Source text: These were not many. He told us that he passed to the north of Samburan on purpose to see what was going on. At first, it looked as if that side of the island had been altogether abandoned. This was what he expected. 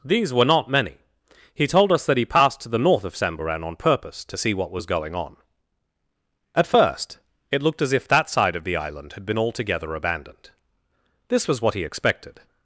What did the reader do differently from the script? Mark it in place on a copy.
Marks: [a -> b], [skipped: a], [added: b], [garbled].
These were not many. He told us that he passed to the north of Samburan on purpose to see what was going on. At first, it looked as if that side of the island had been altogether abandoned. This was what he expected.